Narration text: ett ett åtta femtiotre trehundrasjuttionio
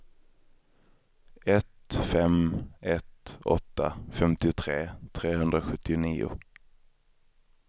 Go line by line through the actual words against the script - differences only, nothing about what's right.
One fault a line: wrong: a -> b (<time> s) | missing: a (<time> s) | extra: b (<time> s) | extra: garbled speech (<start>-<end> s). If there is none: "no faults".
extra: fem (2.1 s)